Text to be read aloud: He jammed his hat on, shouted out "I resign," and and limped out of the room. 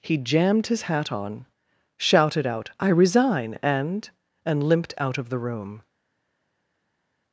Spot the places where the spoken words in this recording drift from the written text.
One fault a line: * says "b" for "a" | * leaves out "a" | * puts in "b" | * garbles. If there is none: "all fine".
all fine